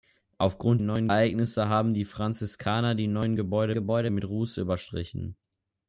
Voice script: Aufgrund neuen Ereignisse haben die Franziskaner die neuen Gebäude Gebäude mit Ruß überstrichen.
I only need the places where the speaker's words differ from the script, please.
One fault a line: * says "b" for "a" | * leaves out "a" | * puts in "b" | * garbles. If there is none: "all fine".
all fine